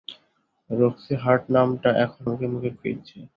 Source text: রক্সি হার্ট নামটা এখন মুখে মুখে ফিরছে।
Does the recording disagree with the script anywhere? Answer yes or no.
no